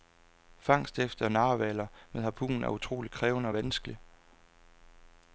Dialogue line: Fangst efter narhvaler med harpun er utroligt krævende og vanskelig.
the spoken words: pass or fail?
pass